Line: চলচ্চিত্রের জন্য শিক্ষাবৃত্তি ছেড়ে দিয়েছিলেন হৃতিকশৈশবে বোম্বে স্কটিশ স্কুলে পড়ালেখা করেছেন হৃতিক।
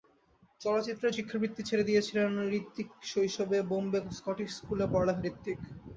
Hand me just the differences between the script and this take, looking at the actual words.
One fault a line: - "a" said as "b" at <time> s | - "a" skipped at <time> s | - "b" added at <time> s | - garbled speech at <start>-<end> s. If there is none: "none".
- "জন্য" skipped at 1.1 s
- "করেছেন" skipped at 5.2 s